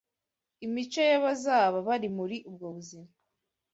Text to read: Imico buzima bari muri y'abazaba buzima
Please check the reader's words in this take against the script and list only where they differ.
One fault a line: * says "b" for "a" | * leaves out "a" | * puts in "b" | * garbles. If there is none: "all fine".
* says "y'abazaba" for "buzima"
* says "ubwo" for "y'abazaba"